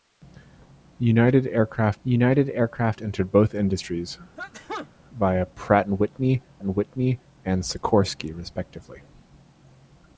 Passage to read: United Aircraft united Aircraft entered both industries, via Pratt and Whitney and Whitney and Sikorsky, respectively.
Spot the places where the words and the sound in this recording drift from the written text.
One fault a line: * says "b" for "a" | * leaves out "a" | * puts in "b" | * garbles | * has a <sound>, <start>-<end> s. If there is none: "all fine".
* has a sneeze, 4.4-4.9 s